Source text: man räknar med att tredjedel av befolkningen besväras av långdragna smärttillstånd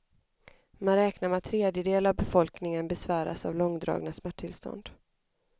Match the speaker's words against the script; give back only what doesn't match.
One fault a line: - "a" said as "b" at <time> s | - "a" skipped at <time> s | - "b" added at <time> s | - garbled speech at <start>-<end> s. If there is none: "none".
none